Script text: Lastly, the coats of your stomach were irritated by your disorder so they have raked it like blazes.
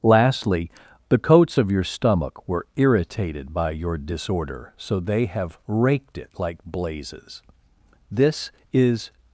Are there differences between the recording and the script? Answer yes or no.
yes